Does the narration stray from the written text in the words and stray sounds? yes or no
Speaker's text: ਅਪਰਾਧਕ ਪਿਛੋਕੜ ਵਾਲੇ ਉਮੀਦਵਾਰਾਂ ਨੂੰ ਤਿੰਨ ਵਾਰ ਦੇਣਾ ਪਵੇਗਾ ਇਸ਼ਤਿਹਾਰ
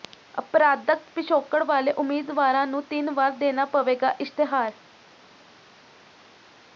no